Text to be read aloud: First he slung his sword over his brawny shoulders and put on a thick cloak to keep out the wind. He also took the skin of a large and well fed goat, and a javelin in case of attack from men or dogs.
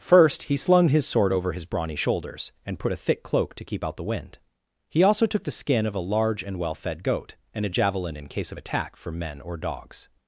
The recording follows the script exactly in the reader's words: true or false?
false